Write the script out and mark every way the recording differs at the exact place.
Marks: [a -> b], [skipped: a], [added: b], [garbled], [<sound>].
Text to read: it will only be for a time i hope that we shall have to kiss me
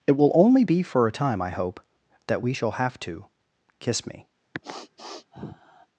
it will only be for a time i hope that we shall have to kiss me [sniff]